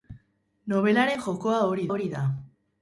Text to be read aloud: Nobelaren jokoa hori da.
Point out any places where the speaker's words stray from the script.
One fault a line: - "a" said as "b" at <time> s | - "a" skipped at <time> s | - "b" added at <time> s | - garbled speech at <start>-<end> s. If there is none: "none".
- "hori" added at 1.9 s